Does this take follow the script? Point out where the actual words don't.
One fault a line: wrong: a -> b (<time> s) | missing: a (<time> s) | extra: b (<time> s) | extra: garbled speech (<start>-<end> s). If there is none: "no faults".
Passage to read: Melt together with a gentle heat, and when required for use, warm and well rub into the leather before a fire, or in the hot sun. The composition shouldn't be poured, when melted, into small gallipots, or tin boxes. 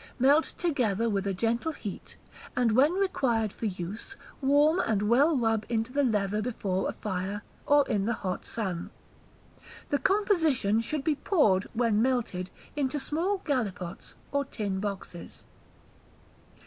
wrong: shouldn't -> should (10.8 s)